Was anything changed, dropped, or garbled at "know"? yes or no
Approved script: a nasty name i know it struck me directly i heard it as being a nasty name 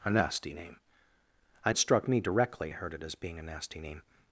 yes